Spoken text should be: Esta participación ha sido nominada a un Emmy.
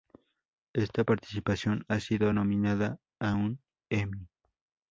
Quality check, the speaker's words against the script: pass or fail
pass